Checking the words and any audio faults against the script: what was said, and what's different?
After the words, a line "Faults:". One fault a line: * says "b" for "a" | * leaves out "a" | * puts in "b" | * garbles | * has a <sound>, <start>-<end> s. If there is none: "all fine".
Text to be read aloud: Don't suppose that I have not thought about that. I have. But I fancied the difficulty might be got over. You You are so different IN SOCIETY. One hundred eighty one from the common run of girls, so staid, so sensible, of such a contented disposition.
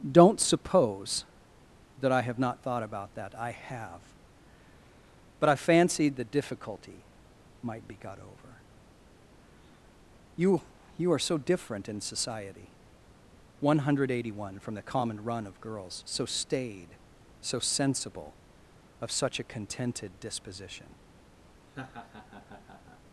Don't suppose that I have not thought about that. I have. But I fancied the difficulty might be got over. You You are so different IN SOCIETY. One hundred eighty one from the common run of girls, so staid, so sensible, of such a contented disposition.
Faults:
* has a laugh, 21.7-23.0 s